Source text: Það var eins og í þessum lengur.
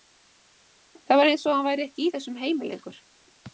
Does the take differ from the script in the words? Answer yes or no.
yes